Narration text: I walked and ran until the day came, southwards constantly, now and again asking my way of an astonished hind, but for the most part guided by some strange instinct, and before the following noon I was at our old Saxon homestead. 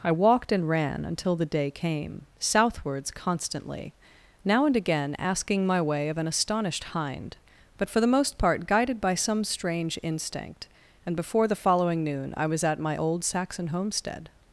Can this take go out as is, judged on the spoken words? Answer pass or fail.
fail